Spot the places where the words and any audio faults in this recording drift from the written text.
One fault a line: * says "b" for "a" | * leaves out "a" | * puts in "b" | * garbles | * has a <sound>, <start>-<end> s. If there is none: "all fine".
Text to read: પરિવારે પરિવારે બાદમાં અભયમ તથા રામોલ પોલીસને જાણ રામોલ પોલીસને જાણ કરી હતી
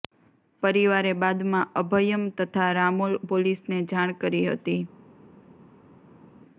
* leaves out "પરિવારે"
* leaves out "રામોલ પોલીસને જાણ"